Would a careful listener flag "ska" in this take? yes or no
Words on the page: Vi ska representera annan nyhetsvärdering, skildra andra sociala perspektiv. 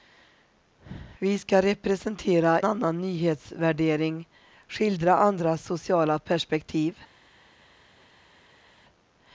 no